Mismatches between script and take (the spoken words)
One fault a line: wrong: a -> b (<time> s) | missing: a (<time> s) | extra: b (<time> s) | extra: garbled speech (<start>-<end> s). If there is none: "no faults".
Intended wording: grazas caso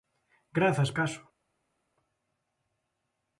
no faults